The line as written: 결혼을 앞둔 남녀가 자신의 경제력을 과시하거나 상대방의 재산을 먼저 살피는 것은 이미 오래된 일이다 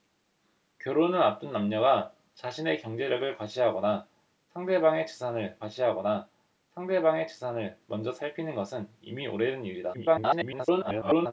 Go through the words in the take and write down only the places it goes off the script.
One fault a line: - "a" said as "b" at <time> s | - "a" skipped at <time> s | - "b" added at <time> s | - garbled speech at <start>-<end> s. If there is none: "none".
- "과시하거나 상대방의 재산을" added at 5.6 s
- garbled speech at 9.9-11.3 s